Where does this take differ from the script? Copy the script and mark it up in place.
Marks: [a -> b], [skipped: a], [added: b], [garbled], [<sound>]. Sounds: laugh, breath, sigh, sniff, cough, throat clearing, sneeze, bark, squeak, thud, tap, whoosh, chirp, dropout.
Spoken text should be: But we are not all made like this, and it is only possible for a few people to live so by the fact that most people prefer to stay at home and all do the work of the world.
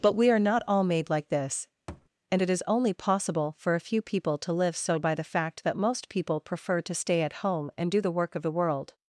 But we are not all made like this, [thud] and it is only possible for a few people to live so by the fact that most people prefer to stay at home and [skipped: all] do the work of the world.